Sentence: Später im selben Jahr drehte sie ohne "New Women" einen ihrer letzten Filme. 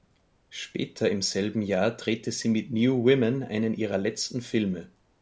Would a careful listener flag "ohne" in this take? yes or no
yes